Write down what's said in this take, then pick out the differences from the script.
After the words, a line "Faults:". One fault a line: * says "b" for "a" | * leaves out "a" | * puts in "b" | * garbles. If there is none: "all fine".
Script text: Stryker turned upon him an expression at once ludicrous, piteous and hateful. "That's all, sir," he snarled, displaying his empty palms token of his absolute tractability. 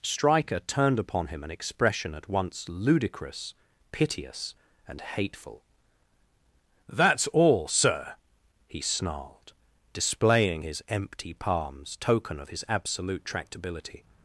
Stryker turned upon him an expression at once ludicrous, piteous and hateful. "That's all, sir," he snarled, displaying his empty palms token of his absolute tractability.
Faults:
all fine